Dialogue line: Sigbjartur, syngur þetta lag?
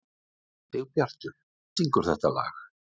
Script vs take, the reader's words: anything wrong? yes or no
no